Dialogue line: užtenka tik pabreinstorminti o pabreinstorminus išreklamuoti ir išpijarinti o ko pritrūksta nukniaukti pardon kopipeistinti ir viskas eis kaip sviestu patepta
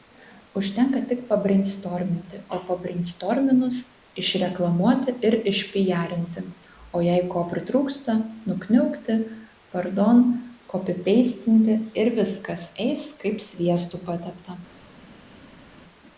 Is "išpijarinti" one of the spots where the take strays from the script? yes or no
no